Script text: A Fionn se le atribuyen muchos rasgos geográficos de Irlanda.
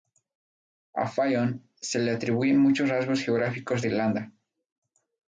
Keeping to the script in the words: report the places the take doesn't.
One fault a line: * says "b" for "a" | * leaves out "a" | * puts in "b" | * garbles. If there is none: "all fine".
all fine